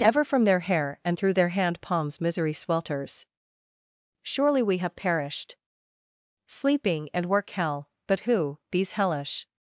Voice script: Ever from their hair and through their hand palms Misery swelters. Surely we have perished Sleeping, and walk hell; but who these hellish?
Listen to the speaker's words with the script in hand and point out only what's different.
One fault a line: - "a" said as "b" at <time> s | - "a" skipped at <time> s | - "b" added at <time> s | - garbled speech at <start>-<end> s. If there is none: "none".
- "walk" said as "work" at 7.3 s